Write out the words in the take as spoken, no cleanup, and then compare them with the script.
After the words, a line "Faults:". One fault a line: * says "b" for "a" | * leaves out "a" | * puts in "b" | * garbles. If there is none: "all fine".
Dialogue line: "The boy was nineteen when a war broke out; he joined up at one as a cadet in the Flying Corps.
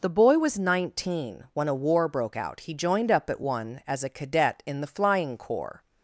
"The boy was nineteen when a war broke out; he joined up at one as a cadet in the Flying Corps.
Faults:
all fine